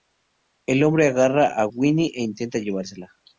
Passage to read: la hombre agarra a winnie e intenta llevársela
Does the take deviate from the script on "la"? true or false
true